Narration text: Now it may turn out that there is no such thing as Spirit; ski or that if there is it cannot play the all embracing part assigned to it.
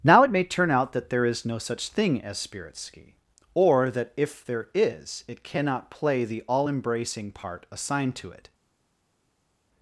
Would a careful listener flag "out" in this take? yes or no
no